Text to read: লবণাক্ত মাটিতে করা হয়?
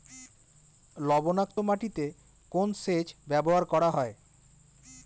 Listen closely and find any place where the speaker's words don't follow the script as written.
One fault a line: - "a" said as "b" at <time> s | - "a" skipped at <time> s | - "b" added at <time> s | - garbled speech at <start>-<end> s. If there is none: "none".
- "কোন সেচ ব্যবহার" added at 2.5 s